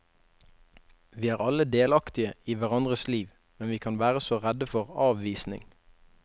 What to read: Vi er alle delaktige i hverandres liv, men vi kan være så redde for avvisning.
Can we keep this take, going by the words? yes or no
yes